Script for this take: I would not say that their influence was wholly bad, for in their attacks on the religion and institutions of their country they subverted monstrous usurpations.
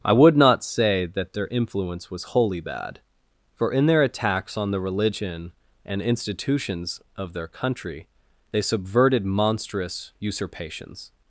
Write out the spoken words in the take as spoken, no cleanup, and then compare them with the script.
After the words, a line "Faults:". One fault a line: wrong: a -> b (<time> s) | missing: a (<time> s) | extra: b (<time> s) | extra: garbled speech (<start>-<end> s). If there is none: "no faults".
I would not say that their influence was wholly bad, for in their attacks on the religion and institutions of their country they subverted monstrous usurpations.
Faults:
no faults